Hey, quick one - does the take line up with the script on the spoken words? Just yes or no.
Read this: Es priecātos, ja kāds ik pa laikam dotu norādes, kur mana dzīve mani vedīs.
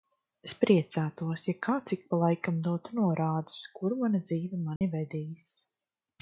yes